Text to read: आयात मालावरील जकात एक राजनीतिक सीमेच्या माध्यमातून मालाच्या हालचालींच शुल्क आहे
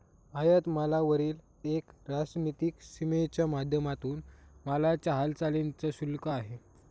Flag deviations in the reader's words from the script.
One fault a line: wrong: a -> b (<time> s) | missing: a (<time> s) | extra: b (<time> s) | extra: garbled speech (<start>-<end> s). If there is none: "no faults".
missing: जकात (1.4 s)